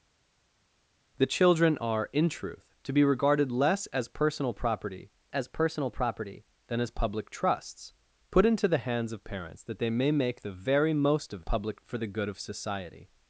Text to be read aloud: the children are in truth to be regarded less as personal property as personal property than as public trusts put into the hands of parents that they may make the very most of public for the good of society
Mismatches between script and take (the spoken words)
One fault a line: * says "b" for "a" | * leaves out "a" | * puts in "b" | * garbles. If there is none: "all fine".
all fine